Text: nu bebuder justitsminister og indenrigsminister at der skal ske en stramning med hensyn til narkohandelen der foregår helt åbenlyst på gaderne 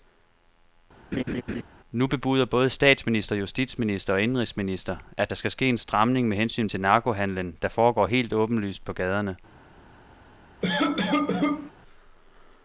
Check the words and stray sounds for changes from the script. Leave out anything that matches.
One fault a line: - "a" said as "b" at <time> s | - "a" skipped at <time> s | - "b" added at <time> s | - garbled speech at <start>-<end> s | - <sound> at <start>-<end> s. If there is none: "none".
- laugh at 1.1-1.6 s
- "både statsminister" added at 2.4 s
- cough at 10.6-11.7 s